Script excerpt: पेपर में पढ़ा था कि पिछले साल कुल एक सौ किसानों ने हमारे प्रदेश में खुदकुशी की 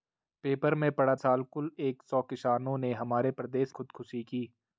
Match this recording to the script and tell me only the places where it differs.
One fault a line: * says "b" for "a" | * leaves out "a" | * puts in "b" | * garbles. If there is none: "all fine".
* leaves out "था कि पिछले"
* leaves out "में"